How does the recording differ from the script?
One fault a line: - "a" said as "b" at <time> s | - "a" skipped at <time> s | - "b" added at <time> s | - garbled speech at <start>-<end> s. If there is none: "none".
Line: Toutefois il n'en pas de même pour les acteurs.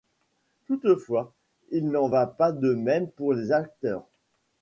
- "va" added at 2.1 s